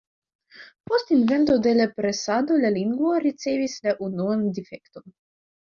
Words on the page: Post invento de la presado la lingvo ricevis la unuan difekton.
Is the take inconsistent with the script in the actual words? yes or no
no